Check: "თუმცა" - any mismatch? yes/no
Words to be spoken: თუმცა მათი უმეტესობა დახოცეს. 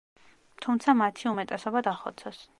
no